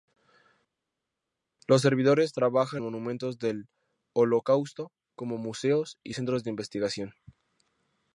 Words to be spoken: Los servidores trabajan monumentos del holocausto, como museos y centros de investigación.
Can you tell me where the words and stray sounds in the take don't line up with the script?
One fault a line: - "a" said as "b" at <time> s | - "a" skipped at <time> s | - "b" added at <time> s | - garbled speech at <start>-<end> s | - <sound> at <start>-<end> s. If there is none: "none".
none